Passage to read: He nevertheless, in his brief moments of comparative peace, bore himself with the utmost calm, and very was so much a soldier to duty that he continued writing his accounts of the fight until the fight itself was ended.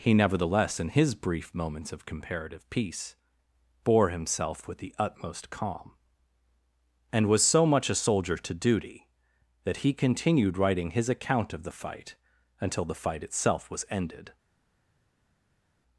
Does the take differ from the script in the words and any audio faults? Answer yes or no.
yes